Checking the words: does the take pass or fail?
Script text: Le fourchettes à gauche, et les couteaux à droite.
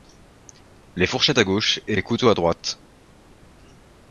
fail